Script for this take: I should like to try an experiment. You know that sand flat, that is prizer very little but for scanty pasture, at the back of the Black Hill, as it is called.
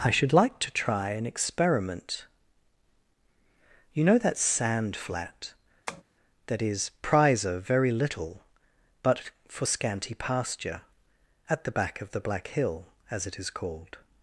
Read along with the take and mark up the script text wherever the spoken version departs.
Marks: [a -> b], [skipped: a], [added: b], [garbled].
I should like to try an experiment. You know that sand flat, that is prizer very little but for scanty pasture, at the back of the Black Hill, as it is called.